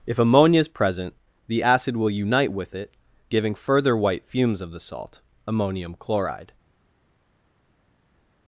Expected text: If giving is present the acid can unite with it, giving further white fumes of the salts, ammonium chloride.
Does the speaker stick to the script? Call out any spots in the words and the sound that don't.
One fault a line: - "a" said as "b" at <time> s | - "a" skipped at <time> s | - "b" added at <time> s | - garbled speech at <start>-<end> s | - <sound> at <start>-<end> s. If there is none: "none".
- "giving" said as "ammonia" at 0.2 s
- "can" said as "will" at 2.0 s
- "salts" said as "salt" at 4.8 s